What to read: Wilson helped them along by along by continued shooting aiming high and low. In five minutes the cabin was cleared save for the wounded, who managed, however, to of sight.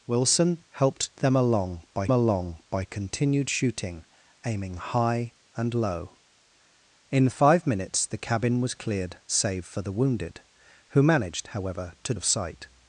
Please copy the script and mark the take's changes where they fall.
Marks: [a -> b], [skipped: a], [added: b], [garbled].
Wilson helped them along by along by continued shooting aiming high and low. In five minutes the cabin was cleared save for the wounded, who managed, however, to of sight.